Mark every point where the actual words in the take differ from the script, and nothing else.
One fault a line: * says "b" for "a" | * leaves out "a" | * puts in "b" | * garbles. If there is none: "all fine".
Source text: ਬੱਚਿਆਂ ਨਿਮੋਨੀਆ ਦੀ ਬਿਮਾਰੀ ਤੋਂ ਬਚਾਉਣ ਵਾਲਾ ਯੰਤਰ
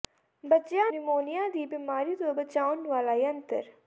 all fine